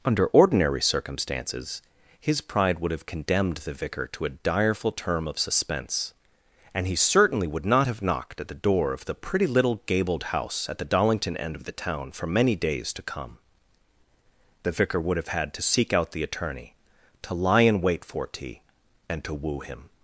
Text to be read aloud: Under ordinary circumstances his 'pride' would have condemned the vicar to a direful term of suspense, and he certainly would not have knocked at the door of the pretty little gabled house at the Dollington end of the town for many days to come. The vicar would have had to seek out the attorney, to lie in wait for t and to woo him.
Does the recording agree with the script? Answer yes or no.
yes